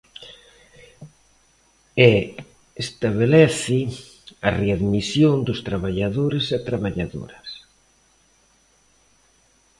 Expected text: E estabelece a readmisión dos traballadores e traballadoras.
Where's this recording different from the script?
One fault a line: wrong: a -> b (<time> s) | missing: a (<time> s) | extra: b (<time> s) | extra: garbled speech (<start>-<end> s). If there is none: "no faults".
no faults